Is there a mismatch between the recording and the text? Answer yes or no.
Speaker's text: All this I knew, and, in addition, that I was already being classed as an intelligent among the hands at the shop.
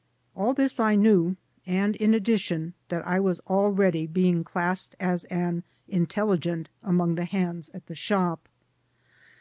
no